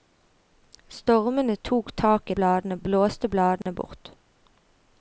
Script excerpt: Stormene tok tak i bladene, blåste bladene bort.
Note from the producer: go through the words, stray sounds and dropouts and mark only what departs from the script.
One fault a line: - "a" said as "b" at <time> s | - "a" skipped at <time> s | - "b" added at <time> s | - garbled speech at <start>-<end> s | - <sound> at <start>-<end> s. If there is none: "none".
- dropout at 3.6-3.7 s